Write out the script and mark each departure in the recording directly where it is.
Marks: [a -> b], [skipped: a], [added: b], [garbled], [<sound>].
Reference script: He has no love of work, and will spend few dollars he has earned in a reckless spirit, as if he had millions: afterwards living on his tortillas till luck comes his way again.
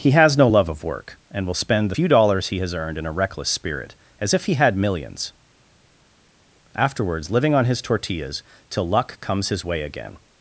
He has no love of work, and will spend few dollars he has earned in a reckless spirit, as if he had millions: afterwards living on his tortillas till luck comes his way again.